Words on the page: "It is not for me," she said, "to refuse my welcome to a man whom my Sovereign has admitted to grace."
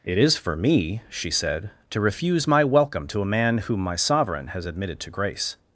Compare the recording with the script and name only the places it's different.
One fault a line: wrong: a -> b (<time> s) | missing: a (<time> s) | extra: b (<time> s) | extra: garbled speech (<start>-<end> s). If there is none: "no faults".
missing: not (0.3 s)